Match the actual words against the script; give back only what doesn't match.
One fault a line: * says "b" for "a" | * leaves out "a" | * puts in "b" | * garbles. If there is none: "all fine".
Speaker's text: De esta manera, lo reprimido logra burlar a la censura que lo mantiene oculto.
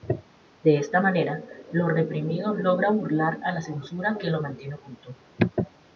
all fine